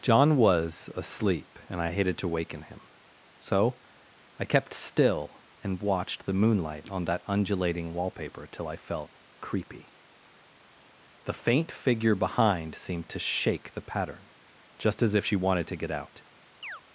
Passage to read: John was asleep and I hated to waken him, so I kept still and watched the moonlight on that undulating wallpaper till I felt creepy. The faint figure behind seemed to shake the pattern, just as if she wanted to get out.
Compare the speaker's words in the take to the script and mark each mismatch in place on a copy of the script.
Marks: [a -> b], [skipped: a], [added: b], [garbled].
John was asleep and I hated to waken him, so I kept still and watched the moonlight on that undulating wallpaper till I felt creepy. The faint figure behind seemed to shake the pattern, just as if she wanted to get out.